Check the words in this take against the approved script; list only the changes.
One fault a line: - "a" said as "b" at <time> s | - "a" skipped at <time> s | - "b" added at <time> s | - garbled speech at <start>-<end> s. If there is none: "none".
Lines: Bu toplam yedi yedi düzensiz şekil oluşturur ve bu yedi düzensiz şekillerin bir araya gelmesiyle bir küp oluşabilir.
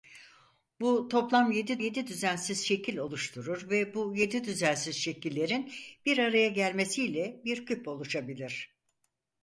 none